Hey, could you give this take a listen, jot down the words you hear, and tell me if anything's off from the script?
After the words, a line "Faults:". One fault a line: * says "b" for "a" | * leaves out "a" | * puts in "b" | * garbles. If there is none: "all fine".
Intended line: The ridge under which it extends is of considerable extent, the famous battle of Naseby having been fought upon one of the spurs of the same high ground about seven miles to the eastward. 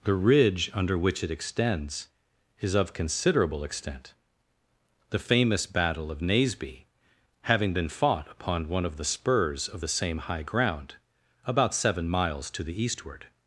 The ridge under which it extends is of considerable extent, the famous battle of Naseby having been fought upon one of the spurs of the same high ground about seven miles to the eastward.
Faults:
all fine